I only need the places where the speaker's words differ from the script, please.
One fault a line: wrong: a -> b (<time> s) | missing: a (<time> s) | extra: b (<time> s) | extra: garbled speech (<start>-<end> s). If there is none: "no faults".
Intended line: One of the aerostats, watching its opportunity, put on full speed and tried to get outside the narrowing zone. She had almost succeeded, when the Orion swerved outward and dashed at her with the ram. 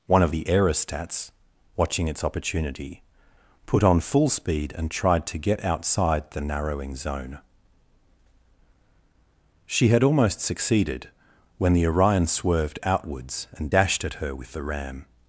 wrong: outward -> outwards (12.8 s)